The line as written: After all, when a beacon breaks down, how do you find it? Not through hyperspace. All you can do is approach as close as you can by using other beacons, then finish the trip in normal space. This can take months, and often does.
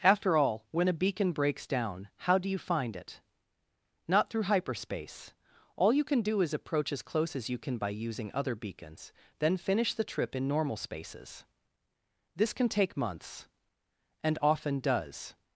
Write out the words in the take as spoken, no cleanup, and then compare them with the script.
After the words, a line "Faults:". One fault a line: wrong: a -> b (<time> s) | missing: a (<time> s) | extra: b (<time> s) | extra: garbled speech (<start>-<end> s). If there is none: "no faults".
After all, when a beacon breaks down, how do you find it? Not through hyperspace. All you can do is approach as close as you can by using other beacons, then finish the trip in normal spaces. This can take months, and often does.
Faults:
wrong: space -> spaces (10.8 s)